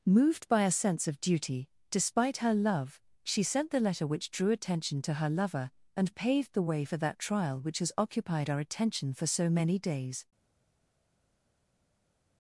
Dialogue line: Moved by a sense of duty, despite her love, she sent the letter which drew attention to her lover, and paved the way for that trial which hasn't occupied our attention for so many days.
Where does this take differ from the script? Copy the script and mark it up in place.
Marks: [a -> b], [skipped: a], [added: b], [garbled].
Moved by a sense of duty, despite her love, she sent the letter which drew attention to her lover, and paved the way for that trial which [hasn't -> has] occupied our attention for so many days.